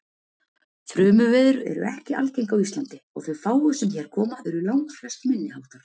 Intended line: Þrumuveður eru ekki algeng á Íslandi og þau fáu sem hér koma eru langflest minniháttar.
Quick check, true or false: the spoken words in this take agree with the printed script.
true